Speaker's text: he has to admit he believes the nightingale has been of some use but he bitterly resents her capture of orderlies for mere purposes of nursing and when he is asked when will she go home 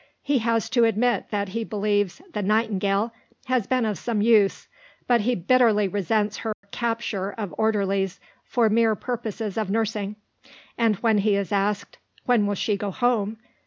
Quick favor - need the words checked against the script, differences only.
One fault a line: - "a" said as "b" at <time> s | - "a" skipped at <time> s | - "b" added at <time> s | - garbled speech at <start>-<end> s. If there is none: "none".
- "that" added at 1.3 s